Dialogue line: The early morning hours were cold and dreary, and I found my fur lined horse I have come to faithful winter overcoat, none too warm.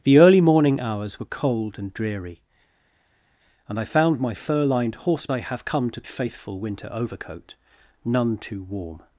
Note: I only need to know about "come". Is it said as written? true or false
true